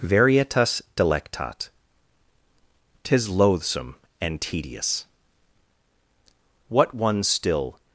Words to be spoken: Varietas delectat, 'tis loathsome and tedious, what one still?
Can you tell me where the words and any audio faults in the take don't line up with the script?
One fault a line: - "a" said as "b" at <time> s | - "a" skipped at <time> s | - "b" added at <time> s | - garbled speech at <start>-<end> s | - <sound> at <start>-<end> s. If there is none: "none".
none